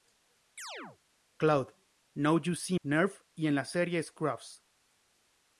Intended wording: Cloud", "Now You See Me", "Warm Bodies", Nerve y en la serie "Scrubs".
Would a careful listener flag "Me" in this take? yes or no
yes